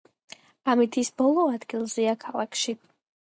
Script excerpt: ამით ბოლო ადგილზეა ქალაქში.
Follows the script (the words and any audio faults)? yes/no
no